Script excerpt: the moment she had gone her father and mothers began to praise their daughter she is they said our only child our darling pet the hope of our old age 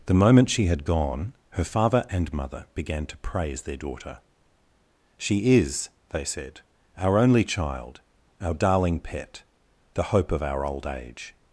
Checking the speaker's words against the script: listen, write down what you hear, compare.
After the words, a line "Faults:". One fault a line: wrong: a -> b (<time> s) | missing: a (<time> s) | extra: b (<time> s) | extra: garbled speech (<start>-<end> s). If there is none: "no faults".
the moment she had gone her father and mother began to praise their daughter she is they said our only child our darling pet the hope of our old age
Faults:
wrong: mothers -> mother (2.3 s)